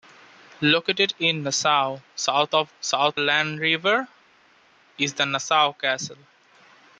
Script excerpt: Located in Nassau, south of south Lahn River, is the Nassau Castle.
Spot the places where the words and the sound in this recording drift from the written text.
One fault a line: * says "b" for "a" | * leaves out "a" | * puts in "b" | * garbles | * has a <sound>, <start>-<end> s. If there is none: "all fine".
all fine